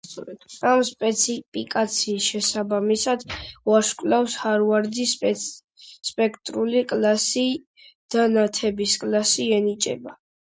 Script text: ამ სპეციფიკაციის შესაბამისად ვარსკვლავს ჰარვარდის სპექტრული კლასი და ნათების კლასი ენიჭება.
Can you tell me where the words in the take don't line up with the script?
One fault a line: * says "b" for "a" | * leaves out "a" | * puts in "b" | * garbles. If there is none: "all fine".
all fine